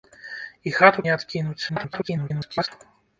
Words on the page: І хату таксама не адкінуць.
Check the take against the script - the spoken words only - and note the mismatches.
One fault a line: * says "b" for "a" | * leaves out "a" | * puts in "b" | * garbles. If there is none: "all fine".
* leaves out "таксама"
* garbles